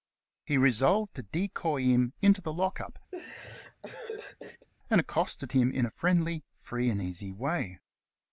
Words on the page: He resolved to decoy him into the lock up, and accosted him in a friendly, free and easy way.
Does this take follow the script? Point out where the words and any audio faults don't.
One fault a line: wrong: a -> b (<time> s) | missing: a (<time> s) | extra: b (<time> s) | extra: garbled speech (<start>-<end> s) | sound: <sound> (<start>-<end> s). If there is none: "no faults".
sound: laugh (3.1-4.7 s)